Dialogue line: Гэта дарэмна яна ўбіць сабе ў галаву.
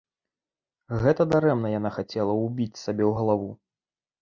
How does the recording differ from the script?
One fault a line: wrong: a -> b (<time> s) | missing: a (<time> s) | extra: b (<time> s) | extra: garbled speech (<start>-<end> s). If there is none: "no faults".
extra: хацела (2.0 s)